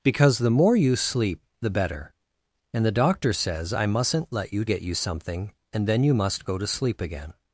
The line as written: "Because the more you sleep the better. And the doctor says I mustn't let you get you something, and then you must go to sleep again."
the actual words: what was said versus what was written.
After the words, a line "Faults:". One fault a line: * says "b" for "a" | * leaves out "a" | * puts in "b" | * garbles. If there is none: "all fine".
"Because the more you sleep the better. And the doctor says I mustn't let you get you something, and then you must go to sleep again."
Faults:
all fine